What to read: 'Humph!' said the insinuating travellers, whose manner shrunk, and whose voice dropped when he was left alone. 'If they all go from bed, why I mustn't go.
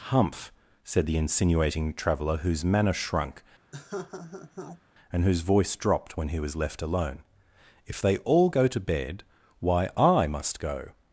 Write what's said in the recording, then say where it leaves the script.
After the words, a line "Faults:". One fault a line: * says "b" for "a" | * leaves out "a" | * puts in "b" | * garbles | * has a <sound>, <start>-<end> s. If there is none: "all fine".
'Humph!' said the insinuating traveller, whose manner shrunk, and whose voice dropped when he was left alone. 'If they all go to bed, why I must go.
Faults:
* says "traveller" for "travellers"
* has a laugh, 3.7-4.8 s
* says "to" for "from"
* says "must" for "mustn't"